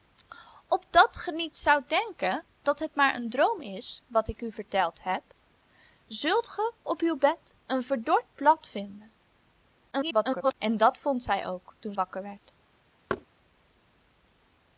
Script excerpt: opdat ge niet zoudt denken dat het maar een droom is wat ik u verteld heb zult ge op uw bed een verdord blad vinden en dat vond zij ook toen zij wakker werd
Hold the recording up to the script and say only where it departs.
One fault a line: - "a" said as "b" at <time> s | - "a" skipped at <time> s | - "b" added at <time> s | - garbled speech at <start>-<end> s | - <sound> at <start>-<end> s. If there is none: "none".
- garbled speech at 9.9-10.5 s
- "zij" skipped at 12.0 s
- thud at 13.1-13.3 s